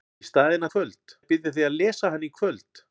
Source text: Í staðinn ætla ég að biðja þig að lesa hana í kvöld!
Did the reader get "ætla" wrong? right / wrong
wrong